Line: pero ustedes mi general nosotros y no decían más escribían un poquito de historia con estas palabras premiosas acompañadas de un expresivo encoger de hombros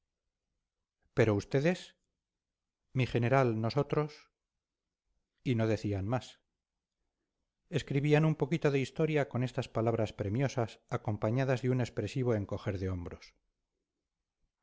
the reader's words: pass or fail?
pass